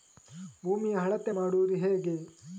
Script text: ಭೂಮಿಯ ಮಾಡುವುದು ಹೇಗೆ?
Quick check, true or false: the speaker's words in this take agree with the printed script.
false